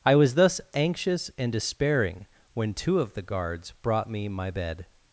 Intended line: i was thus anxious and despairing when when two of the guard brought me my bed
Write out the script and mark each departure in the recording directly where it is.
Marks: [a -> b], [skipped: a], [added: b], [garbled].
i was thus anxious and despairing when [skipped: when] two of the [guard -> guards] brought me my bed